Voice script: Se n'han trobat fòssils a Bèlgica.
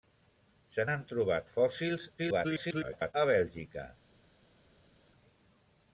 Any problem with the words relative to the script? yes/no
yes